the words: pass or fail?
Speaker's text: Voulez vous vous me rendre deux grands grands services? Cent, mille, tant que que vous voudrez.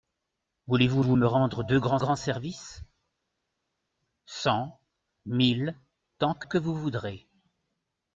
pass